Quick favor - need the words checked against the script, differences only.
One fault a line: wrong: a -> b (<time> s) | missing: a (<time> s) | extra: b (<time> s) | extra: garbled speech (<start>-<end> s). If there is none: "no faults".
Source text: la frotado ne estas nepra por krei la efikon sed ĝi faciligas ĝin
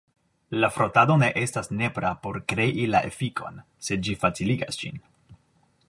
no faults